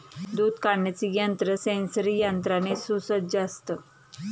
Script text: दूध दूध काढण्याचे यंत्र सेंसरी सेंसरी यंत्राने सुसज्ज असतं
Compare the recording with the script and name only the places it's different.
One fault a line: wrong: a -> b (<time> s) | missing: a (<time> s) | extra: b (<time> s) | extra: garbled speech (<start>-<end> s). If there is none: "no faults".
missing: दूध (0.5 s)
missing: सेंसरी (2.2 s)